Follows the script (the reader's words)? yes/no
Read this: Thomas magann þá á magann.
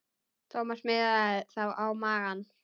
no